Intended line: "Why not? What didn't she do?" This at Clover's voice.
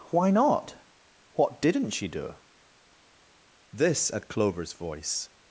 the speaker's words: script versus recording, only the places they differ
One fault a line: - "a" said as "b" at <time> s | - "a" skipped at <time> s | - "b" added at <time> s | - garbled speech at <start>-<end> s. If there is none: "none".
none